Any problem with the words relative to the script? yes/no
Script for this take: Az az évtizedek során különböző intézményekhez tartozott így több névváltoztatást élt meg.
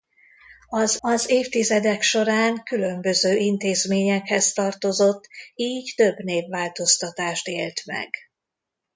no